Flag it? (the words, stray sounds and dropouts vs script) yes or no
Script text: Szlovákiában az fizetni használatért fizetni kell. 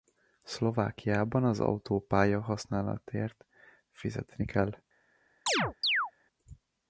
yes